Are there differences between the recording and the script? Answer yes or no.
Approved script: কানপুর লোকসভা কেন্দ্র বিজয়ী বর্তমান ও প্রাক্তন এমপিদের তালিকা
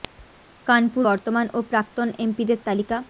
yes